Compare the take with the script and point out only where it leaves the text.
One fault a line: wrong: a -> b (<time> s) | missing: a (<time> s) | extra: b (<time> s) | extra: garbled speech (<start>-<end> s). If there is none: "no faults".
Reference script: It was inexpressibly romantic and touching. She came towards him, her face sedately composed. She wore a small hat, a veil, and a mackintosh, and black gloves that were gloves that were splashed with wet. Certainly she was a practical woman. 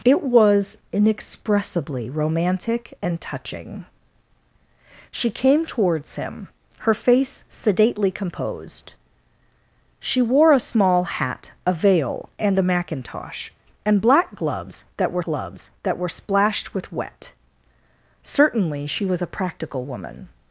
no faults